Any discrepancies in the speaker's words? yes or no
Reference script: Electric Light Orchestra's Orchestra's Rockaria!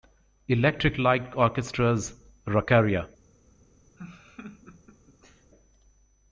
yes